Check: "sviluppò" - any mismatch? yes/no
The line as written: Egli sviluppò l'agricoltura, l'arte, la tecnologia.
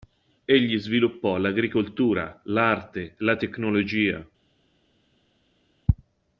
no